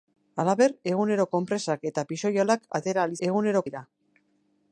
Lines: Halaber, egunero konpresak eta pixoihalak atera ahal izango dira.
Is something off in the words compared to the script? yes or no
yes